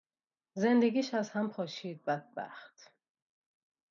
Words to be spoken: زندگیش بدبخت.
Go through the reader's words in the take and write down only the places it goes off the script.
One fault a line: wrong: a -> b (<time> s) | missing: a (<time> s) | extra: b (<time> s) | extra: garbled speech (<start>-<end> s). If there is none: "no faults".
extra: از هم پاشید (1.1 s)